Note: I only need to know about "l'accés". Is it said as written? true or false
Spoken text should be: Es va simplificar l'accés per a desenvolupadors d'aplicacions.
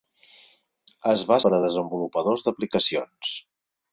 false